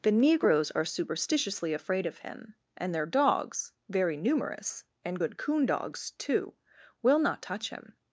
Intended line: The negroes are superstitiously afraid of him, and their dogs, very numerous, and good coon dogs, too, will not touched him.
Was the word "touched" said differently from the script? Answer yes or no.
yes